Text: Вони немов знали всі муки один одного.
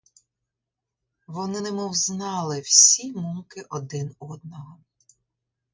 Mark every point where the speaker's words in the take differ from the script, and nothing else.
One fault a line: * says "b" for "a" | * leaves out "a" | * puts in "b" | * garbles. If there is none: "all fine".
all fine